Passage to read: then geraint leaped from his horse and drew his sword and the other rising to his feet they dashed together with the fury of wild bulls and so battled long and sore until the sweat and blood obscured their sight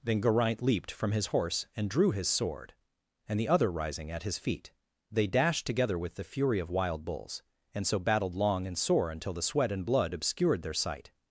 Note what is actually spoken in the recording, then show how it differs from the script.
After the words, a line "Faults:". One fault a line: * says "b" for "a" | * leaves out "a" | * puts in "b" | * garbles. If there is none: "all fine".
then geraint leaped from his horse and drew his sword and the other rising at his feet they dashed together with the fury of wild bulls and so battled long and sore until the sweat and blood obscured their sight
Faults:
* says "at" for "to"